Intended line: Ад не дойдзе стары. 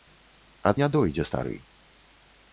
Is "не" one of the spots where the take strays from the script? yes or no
no